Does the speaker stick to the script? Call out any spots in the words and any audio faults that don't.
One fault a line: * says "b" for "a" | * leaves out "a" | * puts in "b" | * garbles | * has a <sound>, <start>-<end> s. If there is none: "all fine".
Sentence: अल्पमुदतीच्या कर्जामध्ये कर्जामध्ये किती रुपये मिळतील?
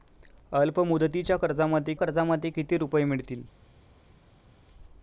all fine